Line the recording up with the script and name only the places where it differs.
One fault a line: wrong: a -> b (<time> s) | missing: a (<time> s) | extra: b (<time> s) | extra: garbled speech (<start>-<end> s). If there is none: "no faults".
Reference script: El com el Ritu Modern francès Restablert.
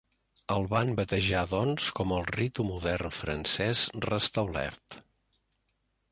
extra: van batejar doncs (0.7 s)